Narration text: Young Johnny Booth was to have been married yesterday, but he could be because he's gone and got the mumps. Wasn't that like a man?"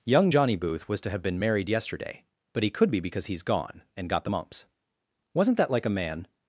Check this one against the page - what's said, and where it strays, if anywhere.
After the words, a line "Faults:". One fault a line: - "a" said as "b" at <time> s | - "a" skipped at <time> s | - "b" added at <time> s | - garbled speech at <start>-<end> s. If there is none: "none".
Young Johnny Booth was to have been married yesterday, but he could be because he's gone and got the mumps. Wasn't that like a man?"
Faults:
none